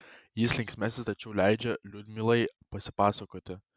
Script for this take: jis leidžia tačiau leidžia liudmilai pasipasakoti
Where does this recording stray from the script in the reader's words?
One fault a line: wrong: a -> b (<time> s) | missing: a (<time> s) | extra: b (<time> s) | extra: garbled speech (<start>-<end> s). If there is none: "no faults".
wrong: leidžia -> linksmesnis (0.6 s)